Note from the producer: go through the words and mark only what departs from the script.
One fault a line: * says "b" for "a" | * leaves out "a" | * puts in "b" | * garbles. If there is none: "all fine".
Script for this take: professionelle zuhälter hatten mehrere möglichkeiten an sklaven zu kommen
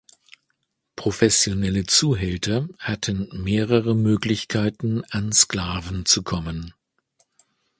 all fine